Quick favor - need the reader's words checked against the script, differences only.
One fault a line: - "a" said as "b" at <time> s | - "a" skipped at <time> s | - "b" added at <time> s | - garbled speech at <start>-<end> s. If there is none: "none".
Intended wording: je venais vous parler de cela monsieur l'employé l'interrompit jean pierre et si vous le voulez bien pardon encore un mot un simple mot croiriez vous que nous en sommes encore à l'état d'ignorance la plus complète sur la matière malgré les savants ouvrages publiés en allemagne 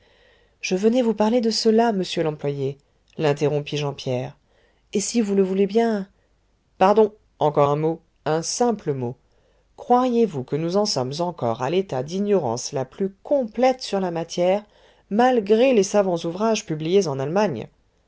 none